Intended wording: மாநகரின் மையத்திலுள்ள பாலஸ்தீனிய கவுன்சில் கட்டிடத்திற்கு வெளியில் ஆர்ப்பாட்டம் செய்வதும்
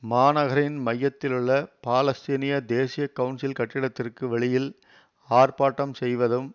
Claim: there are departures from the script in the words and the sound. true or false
true